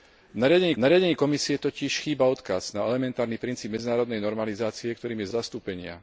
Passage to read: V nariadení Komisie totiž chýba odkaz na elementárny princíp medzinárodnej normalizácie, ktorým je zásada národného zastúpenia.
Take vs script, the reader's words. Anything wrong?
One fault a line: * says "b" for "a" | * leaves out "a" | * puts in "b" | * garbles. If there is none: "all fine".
* puts in "nariadení"
* leaves out "zásada národného"